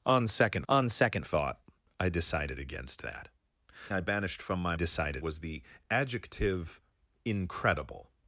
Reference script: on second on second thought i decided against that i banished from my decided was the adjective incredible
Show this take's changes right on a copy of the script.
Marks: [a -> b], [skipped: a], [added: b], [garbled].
on second on second thought i decided against that i banished from my decided was the adjective incredible